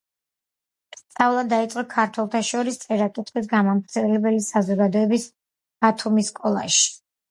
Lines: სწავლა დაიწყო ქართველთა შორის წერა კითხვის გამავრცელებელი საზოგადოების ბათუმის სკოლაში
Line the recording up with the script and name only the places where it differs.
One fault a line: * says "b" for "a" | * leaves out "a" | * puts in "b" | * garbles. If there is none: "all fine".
all fine